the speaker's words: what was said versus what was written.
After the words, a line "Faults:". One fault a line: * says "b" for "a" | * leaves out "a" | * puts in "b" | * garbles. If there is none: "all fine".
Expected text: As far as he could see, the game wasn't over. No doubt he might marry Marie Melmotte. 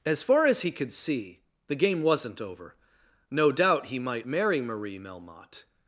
As far as he could see, the game wasn't over. No doubt he might marry Marie Melmotte.
Faults:
all fine